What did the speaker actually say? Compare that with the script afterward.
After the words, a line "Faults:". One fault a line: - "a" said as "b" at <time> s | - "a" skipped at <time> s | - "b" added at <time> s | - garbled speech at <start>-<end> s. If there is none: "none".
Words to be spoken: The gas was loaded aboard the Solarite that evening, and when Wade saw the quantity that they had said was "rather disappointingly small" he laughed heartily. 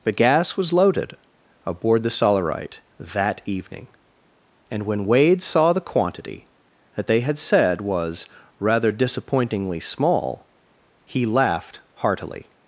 The gas was loaded aboard the Solarite that evening, and when Wade saw the quantity that they had said was "rather disappointingly small" he laughed heartily.
Faults:
none